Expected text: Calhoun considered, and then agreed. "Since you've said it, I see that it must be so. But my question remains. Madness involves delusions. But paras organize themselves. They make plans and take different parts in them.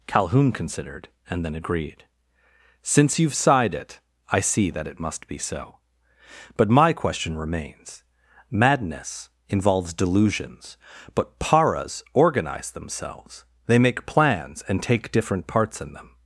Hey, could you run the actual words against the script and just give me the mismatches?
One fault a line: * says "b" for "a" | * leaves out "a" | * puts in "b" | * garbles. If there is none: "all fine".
* says "sighed" for "said"